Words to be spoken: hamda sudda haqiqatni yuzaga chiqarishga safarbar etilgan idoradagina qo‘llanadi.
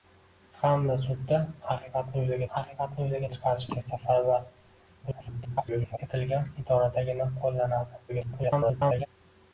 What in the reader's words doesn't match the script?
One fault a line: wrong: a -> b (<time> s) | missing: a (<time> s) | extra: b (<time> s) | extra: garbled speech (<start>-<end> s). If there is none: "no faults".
extra: haqiqatni yuzaga (2.5 s)
extra: garbled speech (5.0-6.0 s)
extra: garbled speech (8.1-9.1 s)